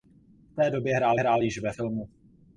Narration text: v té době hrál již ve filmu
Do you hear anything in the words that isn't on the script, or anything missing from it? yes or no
yes